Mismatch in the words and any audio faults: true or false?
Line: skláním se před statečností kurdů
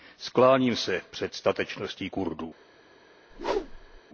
true